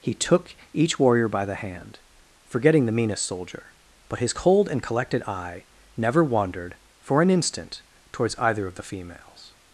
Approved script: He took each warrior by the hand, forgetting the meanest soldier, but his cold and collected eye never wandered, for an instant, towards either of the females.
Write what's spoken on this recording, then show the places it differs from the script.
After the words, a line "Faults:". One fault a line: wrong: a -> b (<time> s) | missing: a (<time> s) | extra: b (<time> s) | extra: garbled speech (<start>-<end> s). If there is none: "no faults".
He took each warrior by the hand, forgetting the meanest soldier, but his cold and collected eye never wandered, for an instant, towards either of the females.
Faults:
no faults